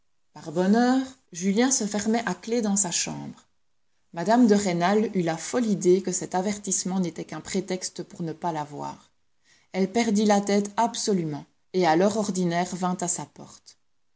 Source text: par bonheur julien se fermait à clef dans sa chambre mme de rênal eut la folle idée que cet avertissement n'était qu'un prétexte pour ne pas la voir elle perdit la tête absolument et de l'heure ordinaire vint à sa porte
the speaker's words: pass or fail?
fail